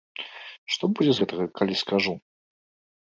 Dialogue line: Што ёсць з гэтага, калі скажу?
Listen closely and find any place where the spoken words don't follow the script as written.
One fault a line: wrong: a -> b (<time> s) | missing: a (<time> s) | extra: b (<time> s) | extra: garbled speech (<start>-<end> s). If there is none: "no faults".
wrong: ёсць -> будзе (1.0 s)